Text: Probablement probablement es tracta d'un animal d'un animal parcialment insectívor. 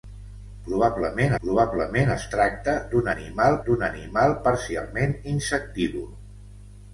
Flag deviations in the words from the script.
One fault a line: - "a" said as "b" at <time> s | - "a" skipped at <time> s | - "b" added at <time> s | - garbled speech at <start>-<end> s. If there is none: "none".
none